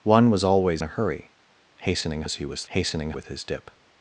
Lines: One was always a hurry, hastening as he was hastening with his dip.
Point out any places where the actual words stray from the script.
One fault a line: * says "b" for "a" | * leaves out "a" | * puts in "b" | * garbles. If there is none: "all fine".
all fine